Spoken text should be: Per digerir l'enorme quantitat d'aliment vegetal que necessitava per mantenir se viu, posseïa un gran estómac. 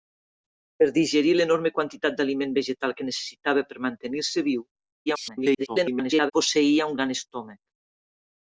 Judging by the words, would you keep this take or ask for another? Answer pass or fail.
fail